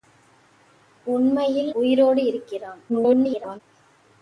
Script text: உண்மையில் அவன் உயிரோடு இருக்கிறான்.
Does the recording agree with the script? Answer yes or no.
no